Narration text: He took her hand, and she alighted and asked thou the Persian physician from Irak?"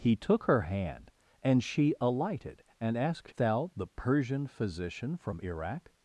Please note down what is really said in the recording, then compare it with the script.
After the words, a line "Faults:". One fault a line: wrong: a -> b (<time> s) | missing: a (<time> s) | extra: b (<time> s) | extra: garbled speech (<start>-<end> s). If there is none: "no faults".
He took her hand, and she alighted and asked thou the Persian physician from Irak?"
Faults:
no faults